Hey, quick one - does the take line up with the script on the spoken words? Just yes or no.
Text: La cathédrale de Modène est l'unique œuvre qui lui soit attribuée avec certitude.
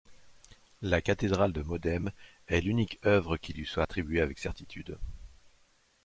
yes